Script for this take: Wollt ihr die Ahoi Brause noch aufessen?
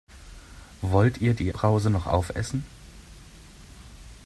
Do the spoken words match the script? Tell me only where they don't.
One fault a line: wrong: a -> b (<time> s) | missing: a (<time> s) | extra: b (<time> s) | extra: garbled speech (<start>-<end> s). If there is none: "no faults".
missing: Ahoi (1.5 s)